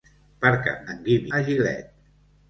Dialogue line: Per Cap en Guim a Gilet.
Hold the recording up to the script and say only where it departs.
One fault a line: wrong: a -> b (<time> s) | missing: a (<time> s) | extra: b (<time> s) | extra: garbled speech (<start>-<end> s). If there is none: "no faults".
no faults